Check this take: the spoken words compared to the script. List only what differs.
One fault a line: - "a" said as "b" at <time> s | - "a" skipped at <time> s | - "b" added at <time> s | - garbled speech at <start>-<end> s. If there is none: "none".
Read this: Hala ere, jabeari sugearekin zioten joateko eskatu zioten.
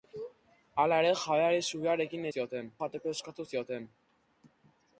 none